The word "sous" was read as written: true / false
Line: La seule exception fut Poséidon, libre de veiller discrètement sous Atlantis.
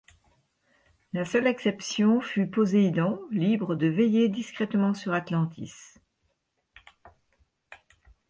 false